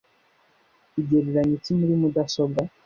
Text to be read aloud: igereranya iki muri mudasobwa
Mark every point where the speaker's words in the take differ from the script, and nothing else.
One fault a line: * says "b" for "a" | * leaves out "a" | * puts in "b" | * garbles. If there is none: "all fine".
all fine